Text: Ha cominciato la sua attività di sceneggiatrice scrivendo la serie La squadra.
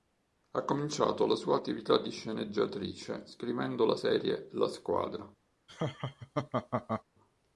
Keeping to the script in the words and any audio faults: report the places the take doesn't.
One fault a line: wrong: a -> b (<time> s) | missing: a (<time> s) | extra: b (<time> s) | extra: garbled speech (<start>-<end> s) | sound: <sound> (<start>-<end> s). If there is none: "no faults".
sound: laugh (5.7-7.0 s)